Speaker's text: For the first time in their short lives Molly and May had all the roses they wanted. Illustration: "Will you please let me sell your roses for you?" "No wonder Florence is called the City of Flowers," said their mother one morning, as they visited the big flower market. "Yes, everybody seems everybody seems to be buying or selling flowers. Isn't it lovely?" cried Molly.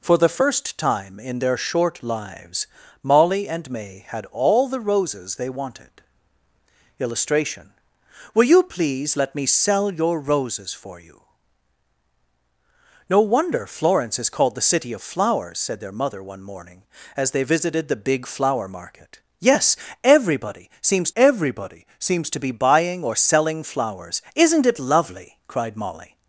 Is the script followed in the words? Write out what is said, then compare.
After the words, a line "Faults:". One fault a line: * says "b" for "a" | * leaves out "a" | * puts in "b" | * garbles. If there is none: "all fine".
For the first time in their short lives Molly and May had all the roses they wanted. Illustration: "Will you please let me sell your roses for you?" "No wonder Florence is called the City of Flowers," said their mother one morning, as they visited the big flower market. "Yes, everybody seems everybody seems to be buying or selling flowers. Isn't it lovely?" cried Molly.
Faults:
all fine